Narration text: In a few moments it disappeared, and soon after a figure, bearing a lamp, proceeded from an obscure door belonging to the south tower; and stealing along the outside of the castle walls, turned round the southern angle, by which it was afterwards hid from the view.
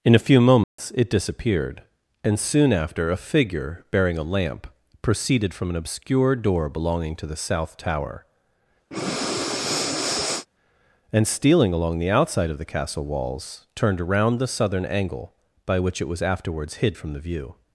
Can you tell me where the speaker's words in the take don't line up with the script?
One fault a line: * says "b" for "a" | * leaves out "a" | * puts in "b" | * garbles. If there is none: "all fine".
* says "around" for "round"